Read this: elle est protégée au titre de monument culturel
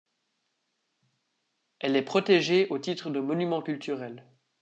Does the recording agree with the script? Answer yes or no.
yes